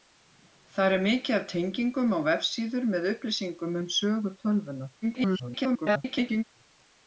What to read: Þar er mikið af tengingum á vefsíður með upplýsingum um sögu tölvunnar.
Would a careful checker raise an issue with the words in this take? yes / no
yes